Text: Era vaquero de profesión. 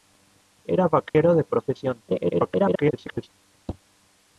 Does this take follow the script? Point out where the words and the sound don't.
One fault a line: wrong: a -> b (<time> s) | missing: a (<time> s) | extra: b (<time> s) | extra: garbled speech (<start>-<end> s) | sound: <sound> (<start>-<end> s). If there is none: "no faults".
sound: dropout (1.1-1.1 s)
extra: garbled speech (2.1-3.3 s)